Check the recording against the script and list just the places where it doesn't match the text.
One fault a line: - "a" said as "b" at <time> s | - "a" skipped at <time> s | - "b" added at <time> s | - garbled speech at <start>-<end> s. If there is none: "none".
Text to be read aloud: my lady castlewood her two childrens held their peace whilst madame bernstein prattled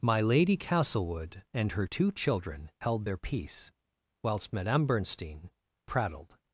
- "and" added at 1.5 s
- "childrens" said as "children" at 2.1 s